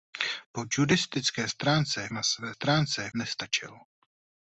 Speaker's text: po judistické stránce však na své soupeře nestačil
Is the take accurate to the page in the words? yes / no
no